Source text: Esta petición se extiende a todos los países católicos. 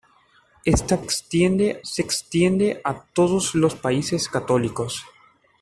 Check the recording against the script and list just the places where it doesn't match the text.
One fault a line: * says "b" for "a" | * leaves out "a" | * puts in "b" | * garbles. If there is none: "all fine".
* says "extiende" for "petición"